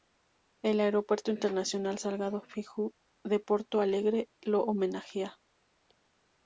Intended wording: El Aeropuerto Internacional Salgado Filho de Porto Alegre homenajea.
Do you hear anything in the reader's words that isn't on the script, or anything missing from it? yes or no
yes